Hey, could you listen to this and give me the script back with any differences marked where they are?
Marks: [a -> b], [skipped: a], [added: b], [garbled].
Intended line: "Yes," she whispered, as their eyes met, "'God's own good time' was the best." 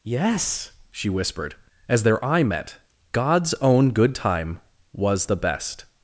"Yes," she whispered, as their [eyes -> eye] met, "'God's own good time' was the best."